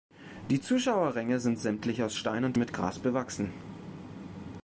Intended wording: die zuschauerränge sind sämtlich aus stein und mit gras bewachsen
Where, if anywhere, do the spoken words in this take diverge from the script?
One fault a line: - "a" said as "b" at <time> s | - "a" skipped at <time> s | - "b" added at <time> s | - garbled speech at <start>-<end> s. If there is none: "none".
none